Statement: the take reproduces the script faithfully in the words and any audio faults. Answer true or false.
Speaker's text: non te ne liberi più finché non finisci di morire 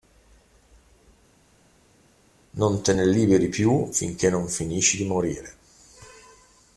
true